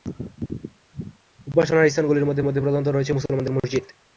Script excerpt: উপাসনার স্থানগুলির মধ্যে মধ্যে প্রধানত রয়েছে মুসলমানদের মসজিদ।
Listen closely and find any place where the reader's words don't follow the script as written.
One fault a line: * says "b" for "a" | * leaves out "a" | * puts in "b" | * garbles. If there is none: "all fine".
all fine